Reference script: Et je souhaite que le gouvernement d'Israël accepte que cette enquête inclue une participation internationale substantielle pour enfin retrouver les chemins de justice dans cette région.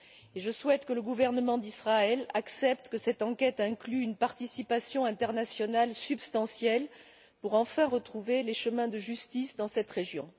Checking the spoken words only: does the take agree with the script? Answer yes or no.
yes